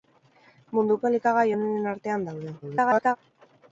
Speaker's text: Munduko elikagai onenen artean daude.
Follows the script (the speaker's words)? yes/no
no